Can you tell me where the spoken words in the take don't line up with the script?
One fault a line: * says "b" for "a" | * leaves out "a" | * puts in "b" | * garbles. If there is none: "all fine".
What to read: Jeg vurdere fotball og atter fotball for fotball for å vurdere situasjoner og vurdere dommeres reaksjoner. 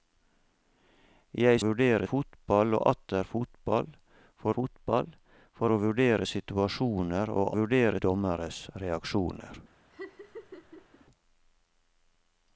all fine